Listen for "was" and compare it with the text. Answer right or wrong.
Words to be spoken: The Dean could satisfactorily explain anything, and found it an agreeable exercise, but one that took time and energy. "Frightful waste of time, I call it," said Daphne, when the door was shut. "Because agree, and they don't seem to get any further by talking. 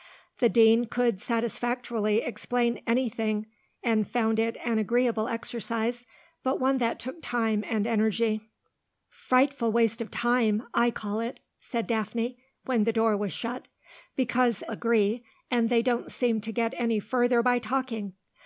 right